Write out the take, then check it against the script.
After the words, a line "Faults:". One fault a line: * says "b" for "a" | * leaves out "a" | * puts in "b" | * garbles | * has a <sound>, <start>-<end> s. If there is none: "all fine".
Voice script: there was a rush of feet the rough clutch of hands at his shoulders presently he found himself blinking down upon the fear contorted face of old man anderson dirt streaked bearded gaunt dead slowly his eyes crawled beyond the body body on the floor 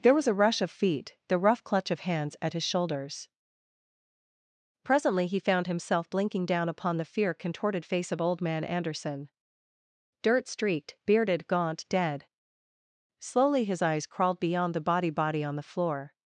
there was a rush of feet the rough clutch of hands at his shoulders presently he found himself blinking down upon the fear contorted face of old man anderson dirt streaked bearded gaunt dead slowly his eyes crawled beyond the body body on the floor
Faults:
all fine